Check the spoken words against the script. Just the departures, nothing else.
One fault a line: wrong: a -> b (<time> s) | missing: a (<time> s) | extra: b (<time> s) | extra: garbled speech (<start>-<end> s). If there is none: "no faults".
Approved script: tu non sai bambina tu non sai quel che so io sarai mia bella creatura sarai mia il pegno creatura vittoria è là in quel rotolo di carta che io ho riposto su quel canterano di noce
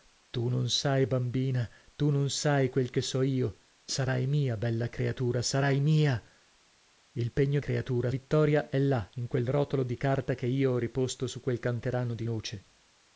no faults